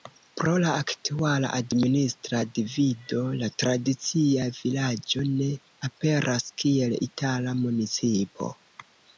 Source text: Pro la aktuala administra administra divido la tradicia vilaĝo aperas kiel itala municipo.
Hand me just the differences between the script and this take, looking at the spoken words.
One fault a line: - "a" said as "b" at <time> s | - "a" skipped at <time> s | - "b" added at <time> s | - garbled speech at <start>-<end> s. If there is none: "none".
- "administra" skipped at 2.4 s
- "ne" added at 5.3 s